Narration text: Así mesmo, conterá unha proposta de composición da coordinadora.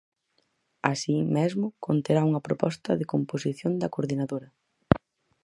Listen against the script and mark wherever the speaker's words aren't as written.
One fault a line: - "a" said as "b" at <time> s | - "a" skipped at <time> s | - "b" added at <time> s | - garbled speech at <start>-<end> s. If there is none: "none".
none